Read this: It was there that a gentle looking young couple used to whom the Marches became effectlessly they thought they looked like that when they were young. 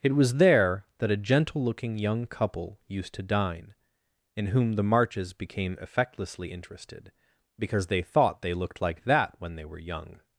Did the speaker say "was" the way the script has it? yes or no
yes